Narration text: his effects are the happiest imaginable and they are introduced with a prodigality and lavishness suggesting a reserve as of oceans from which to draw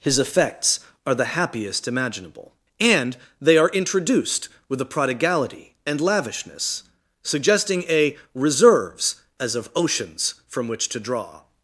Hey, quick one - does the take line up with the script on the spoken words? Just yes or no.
no